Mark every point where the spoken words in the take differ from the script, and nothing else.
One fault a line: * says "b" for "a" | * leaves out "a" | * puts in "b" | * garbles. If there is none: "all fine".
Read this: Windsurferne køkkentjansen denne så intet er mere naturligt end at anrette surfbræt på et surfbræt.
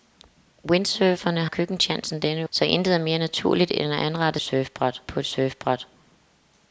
all fine